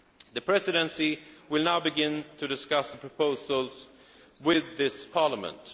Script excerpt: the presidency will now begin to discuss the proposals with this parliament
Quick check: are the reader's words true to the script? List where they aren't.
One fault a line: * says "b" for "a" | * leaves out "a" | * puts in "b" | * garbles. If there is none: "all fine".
all fine